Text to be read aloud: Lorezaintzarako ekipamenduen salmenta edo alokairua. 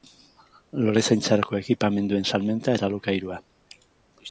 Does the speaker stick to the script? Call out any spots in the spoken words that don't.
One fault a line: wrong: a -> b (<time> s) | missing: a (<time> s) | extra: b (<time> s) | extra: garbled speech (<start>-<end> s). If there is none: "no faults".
wrong: edo -> eta (2.8 s)